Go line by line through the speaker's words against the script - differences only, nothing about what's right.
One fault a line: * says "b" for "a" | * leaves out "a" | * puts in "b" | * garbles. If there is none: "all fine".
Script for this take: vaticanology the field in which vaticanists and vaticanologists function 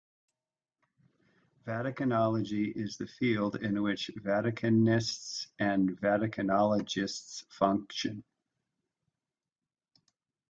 * puts in "is"